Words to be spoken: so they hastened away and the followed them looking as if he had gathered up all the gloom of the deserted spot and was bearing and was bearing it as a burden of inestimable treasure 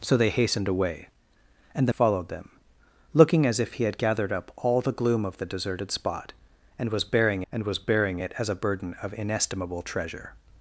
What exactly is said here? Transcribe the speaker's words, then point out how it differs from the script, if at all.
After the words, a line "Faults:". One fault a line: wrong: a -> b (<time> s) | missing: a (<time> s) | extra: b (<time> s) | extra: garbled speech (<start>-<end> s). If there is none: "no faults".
so they hastened away and the followed them looking as if he had gathered up all the gloom of the deserted spot and was bearing and was bearing it as a burden of inestimable treasure
Faults:
no faults